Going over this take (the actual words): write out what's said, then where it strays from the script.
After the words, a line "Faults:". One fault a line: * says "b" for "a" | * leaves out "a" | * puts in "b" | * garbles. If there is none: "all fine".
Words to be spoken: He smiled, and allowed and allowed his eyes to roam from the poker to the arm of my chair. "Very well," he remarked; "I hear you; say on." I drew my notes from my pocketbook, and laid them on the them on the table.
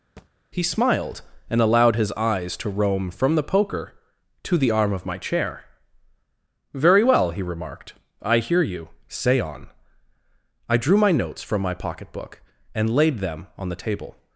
He smiled, and allowed his eyes to roam from the poker to the arm of my chair. "Very well," he remarked; "I hear you; say on." I drew my notes from my pocketbook, and laid them on the table.
Faults:
* leaves out "and allowed"
* leaves out "them on the"